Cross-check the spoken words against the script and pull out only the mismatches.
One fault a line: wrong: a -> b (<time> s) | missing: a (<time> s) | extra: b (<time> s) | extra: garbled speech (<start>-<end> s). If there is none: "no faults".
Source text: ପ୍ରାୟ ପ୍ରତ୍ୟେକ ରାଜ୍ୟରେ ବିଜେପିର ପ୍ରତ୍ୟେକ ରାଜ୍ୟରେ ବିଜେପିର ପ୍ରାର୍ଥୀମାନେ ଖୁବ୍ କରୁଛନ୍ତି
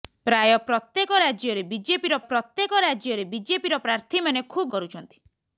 no faults